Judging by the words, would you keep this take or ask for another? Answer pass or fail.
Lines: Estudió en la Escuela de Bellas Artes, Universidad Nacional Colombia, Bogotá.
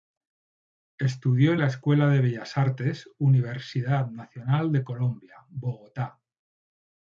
fail